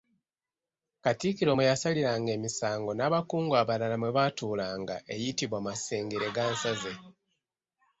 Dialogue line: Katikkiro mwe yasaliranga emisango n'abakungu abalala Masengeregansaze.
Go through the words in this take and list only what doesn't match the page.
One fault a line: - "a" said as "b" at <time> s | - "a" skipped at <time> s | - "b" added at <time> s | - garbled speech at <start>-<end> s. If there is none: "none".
- "mwe baatuulanga eyitibwa" added at 4.0 s